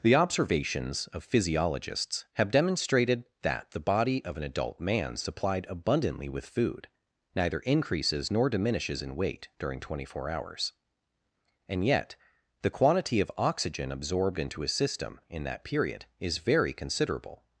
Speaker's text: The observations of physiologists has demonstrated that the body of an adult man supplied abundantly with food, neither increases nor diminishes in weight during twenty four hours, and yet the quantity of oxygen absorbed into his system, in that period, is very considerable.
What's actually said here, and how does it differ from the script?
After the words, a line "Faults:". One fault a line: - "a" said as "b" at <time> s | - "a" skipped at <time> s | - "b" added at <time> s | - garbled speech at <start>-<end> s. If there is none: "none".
The observations of physiologists have demonstrated that the body of an adult man supplied abundantly with food, neither increases nor diminishes in weight during twenty four hours, and yet the quantity of oxygen absorbed into his system, in that period, is very considerable.
Faults:
- "has" said as "have" at 2.3 s